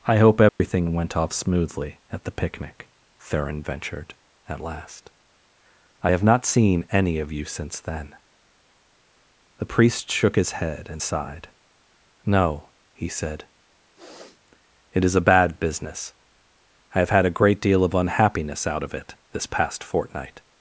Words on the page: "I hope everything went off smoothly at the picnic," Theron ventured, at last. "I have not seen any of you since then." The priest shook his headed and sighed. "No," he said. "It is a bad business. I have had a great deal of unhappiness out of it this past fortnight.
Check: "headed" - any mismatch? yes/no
yes